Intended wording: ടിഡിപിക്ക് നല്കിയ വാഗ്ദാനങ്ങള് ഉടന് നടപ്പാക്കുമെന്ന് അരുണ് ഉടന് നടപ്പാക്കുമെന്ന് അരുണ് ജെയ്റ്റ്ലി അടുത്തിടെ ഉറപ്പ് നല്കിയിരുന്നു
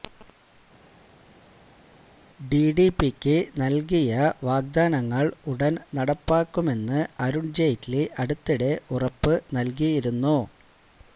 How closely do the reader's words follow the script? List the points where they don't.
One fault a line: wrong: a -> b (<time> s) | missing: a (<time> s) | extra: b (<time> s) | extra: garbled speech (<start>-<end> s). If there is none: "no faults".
missing: ഉടന് നടപ്പാക്കുമെന്ന് അരുണ് (7.5 s)